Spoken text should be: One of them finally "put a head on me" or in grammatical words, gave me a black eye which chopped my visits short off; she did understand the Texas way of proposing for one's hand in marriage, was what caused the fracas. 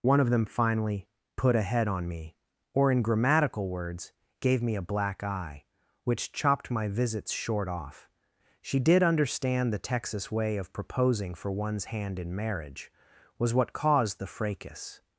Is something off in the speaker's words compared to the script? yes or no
no